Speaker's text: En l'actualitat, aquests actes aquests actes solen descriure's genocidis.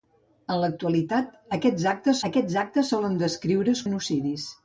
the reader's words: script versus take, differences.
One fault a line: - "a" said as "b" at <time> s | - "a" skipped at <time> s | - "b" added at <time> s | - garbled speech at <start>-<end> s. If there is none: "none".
none